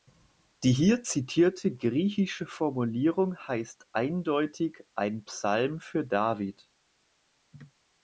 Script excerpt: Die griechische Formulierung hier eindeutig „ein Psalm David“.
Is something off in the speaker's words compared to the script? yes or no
yes